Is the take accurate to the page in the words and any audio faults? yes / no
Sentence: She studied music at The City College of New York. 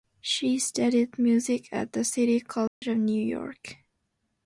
no